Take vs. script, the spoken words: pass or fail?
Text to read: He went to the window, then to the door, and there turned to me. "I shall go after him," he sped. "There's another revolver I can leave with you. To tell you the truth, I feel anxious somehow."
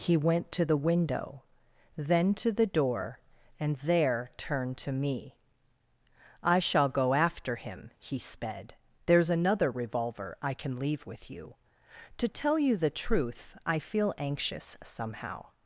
pass